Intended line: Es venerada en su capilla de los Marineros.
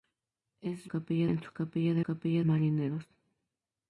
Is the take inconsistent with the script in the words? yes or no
yes